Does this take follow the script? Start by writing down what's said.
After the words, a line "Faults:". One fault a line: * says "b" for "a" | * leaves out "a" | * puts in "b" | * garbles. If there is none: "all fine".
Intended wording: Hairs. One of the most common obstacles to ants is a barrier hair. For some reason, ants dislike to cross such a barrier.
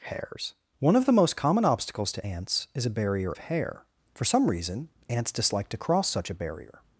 Hairs. One of the most common obstacles to ants is a barrier hair. For some reason, ants dislike to cross such a barrier.
Faults:
all fine